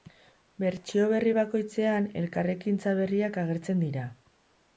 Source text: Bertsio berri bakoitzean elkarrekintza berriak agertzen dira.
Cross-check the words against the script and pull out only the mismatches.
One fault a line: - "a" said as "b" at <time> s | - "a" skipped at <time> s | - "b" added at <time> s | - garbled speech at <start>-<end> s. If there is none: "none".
none